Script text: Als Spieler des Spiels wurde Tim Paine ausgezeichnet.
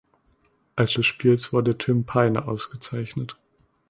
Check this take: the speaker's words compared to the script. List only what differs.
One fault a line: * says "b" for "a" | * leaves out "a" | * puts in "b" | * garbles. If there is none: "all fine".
* leaves out "Spieler"